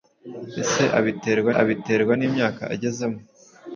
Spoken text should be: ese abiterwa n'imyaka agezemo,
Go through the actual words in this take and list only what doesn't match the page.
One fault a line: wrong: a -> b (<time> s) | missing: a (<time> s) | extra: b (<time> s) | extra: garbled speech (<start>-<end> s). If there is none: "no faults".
extra: abiterwa (1.6 s)